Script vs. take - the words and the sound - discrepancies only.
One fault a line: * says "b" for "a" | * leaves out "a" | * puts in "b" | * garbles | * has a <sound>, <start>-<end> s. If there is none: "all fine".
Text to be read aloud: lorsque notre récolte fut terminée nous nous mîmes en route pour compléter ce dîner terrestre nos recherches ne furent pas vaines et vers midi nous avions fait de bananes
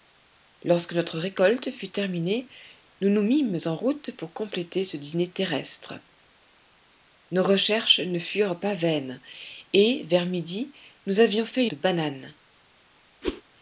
* has a whoosh, 13.2-13.4 s